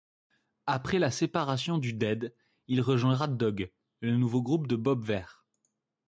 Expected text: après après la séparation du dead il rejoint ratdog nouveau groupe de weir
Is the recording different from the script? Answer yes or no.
yes